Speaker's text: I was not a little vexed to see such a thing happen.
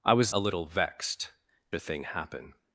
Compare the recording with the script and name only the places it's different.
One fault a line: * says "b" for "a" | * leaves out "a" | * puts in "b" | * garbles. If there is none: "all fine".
* leaves out "not"
* leaves out "to see such"